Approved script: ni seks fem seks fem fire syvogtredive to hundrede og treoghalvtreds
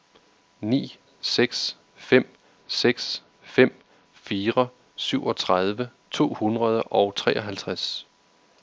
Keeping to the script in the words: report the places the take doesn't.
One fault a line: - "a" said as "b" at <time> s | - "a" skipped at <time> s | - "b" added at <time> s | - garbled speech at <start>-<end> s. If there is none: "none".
none